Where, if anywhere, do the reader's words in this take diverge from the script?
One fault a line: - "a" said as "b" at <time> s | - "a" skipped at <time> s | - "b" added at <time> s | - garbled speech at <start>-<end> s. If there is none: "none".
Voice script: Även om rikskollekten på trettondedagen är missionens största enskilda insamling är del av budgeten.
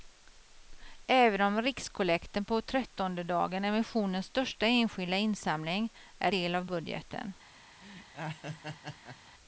none